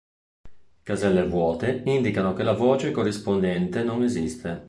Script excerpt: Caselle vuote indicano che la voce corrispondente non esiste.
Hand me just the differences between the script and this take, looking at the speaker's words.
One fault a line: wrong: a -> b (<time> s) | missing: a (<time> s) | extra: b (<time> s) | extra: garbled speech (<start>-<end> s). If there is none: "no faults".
no faults